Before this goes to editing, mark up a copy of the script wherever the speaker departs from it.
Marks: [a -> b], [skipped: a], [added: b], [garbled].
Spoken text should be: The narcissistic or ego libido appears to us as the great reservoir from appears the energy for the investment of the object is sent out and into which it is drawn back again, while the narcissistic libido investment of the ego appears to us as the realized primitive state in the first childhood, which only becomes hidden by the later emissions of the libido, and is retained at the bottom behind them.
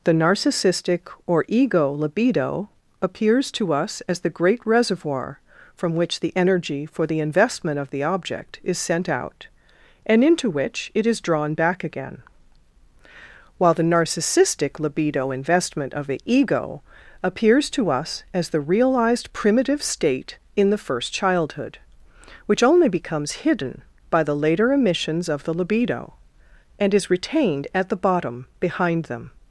The narcissistic or ego libido appears to us as the great reservoir from [appears -> which] the energy for the investment of the object is sent out and into which it is drawn back again, while the narcissistic libido investment of the ego appears to us as the realized primitive state in the first childhood, which only becomes hidden by the later emissions of the libido, and is retained at the bottom behind them.